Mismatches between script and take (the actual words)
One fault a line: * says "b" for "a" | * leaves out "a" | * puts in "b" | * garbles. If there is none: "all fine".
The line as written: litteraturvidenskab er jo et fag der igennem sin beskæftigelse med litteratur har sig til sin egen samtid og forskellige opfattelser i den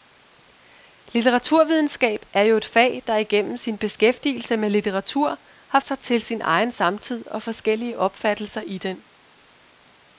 all fine